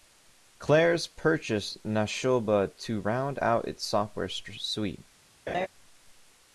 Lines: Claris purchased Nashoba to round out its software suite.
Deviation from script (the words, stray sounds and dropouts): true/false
true